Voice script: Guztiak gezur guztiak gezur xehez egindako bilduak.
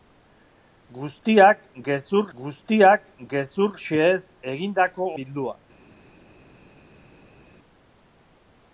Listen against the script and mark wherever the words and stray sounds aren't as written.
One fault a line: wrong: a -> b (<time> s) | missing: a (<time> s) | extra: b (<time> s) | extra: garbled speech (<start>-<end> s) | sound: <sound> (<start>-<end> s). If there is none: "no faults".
no faults